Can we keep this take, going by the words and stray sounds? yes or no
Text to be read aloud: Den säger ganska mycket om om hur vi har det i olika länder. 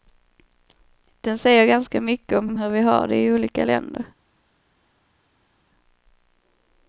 yes